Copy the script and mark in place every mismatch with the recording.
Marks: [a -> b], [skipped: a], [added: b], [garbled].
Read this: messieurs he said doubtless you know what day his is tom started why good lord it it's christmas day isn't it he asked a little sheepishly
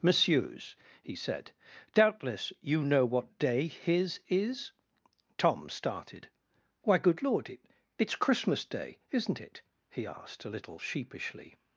messieurs he said doubtless you know what day his is tom started why good lord it it's christmas day isn't it he asked a little sheepishly